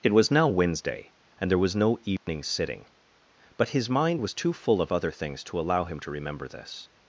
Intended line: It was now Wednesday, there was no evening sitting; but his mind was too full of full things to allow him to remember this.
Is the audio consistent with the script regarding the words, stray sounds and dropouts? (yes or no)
no